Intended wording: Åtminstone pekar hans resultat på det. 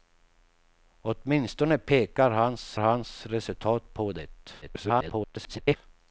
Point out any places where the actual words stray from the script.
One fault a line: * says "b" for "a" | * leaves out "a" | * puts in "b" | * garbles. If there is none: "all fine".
* puts in "hans"
* garbles